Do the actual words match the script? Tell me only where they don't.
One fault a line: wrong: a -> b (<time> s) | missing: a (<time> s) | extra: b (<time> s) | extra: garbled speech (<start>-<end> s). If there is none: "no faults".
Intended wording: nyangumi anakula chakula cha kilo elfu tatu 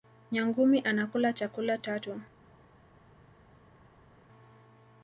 missing: cha kilo elfu (1.8 s)